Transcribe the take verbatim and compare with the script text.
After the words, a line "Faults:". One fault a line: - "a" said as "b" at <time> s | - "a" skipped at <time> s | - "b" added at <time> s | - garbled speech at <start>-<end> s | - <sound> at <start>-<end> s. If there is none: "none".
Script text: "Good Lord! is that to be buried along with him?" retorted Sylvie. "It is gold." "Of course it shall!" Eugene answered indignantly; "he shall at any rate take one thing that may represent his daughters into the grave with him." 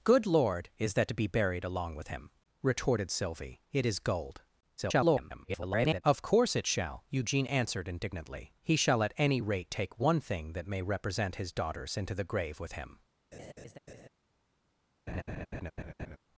"Good Lord! is that to be buried along with him?" retorted Sylvie. "It is gold." [garbled] "Of course it shall!" Eugene answered indignantly; "he shall at any rate take one thing that may represent his daughters into the grave with him."
Faults:
- garbled speech at 4.8-6.0 s
- laugh at 13.3-14.1 s
- laugh at 15.1-16.2 s